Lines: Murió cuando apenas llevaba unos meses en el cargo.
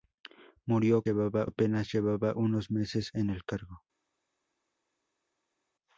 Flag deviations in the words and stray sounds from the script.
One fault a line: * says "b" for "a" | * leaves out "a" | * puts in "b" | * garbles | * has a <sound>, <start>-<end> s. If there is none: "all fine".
* says "llevaba" for "cuando"